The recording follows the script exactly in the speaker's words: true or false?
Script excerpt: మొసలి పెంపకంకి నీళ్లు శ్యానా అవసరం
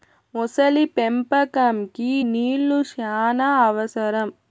true